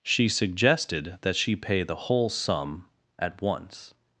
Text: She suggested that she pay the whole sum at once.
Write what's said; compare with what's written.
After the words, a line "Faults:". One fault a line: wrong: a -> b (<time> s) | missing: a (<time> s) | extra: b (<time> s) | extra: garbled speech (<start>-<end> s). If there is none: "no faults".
She suggested that she pay the whole sum at once.
Faults:
no faults